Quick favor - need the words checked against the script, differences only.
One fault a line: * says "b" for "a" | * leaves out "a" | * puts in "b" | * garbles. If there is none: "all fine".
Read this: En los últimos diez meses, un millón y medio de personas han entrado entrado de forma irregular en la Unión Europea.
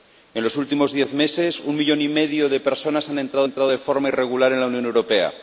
all fine